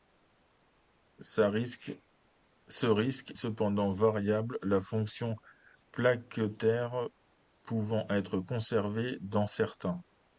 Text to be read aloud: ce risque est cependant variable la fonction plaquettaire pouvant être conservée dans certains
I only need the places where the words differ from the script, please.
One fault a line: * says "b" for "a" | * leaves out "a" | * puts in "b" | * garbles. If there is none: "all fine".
* leaves out "est"